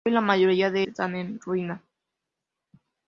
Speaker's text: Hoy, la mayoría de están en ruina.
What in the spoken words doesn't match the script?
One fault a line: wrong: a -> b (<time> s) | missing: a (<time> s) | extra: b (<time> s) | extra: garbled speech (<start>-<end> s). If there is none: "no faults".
no faults